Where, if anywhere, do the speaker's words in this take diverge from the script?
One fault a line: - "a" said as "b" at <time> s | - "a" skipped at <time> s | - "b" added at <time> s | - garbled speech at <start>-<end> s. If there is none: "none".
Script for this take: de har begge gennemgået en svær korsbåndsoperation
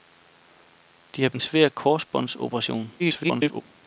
- "begge gennemgået" skipped at 1.3 s
- garbled speech at 3.0-3.6 s